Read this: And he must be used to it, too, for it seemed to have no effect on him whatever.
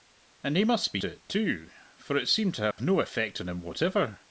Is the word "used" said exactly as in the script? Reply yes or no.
no